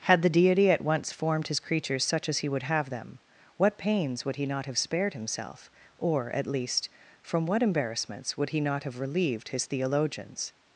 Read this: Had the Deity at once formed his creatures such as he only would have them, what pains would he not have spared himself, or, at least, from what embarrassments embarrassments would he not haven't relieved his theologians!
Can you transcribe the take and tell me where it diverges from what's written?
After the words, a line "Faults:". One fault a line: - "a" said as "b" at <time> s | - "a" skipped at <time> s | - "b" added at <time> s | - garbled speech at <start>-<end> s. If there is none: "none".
Had the Deity at once formed his creatures such as he would have them, what pains would he not have spared himself, or, at least, from what embarrassments would he not have relieved his theologians!
Faults:
- "only" skipped at 2.5 s
- "embarrassments" skipped at 8.4 s
- "haven't" said as "have" at 8.8 s